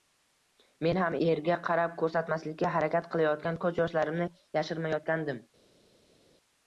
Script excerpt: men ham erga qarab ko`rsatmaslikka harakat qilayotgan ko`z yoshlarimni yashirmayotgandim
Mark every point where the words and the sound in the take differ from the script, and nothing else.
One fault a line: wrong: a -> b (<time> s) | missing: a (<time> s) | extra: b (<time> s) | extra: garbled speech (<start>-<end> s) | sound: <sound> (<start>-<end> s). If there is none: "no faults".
no faults